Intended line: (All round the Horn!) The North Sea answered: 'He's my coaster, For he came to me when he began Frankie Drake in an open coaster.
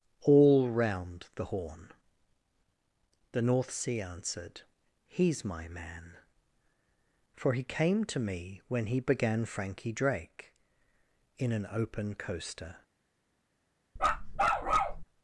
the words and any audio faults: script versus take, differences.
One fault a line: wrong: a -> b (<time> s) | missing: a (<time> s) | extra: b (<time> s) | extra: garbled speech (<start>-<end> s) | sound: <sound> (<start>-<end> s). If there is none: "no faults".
wrong: coaster -> man (5.7 s)
sound: bark (14.0-15.0 s)